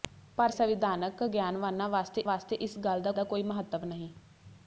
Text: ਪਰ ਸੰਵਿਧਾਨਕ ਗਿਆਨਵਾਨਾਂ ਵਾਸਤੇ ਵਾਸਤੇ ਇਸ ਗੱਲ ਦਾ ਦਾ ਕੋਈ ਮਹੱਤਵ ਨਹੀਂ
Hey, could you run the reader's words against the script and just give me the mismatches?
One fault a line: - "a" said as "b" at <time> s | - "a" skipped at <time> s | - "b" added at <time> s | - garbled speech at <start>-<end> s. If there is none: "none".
none